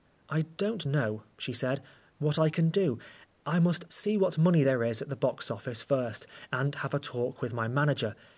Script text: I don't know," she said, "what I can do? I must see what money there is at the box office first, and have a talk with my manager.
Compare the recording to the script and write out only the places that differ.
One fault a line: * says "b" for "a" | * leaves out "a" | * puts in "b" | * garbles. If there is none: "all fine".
all fine